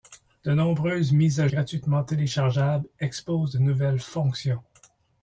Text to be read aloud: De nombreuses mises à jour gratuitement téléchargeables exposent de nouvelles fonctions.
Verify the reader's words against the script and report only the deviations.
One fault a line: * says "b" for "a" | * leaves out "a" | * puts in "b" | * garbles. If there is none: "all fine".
* leaves out "jour"